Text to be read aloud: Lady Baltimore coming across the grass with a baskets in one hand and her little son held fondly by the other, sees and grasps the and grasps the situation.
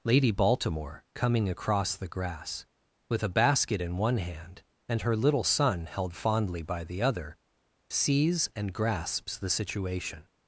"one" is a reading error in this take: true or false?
false